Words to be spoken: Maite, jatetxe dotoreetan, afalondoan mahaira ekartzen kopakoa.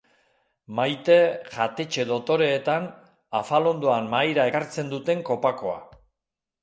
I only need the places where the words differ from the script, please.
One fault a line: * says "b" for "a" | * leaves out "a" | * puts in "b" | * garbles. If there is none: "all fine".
* puts in "duten"